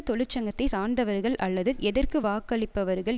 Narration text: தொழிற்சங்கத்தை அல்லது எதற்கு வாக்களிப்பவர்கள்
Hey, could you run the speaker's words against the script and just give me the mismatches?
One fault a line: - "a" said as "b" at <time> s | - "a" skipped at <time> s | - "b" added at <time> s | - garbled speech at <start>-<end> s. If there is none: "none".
- "சார்ந்தவர்கள்" added at 0.7 s